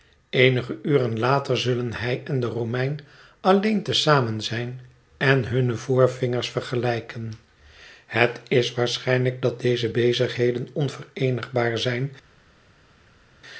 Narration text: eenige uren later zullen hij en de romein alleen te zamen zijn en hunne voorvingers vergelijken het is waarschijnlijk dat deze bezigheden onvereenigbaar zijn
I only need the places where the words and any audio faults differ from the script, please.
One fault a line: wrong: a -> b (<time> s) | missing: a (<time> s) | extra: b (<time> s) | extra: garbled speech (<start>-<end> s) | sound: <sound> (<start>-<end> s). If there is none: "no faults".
no faults